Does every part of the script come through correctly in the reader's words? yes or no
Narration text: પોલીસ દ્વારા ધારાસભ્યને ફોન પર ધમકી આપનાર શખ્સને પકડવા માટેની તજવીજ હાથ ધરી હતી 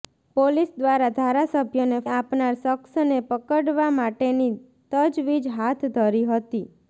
no